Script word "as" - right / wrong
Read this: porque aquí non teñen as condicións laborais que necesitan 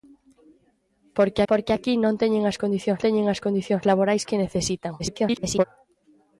right